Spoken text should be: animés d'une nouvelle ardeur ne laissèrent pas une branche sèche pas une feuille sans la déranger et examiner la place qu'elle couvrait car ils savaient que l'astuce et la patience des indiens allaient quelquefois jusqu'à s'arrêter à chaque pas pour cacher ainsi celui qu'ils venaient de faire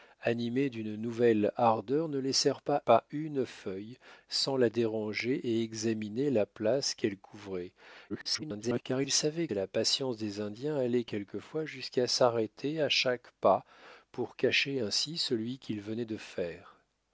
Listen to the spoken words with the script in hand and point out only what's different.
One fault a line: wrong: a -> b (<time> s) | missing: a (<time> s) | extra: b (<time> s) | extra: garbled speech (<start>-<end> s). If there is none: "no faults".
missing: une branche sèche (2.8 s)
extra: garbled speech (8.1-8.8 s)
missing: que l'astuce (9.5 s)